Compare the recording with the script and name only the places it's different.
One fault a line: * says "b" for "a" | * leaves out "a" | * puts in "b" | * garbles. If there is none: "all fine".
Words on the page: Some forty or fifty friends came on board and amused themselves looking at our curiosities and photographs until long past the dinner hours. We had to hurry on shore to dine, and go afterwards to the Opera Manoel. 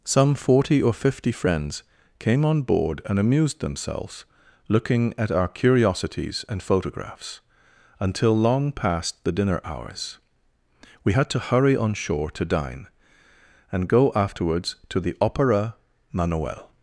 all fine